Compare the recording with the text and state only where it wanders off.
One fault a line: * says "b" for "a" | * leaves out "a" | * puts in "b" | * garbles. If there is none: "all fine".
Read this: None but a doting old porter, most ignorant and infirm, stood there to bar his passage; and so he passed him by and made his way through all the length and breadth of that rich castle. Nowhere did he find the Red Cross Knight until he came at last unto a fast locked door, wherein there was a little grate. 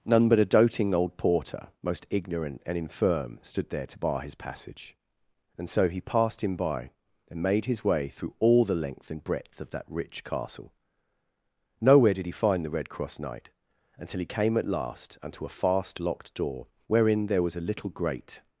all fine